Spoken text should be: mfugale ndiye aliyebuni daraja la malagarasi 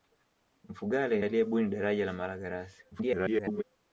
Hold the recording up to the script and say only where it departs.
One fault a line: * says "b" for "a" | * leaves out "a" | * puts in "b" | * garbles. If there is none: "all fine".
* leaves out "ndiye"
* garbles